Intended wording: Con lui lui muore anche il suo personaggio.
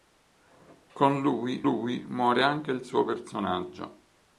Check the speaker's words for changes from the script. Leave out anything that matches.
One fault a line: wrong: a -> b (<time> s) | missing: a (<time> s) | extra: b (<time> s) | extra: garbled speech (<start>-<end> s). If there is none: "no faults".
no faults